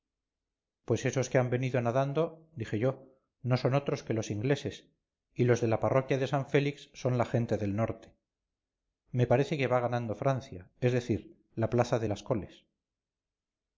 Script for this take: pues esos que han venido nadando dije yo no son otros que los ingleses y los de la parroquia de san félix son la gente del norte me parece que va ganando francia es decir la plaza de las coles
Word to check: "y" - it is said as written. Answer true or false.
true